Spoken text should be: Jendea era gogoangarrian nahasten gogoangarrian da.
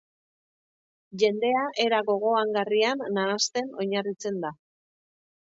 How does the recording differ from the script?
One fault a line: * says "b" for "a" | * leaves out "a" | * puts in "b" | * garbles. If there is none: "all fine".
* says "oinarritzen" for "gogoangarrian"